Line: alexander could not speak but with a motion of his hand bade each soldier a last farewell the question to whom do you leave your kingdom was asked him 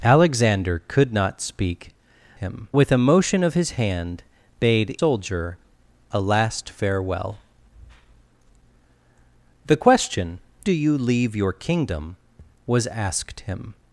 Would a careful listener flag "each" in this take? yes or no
yes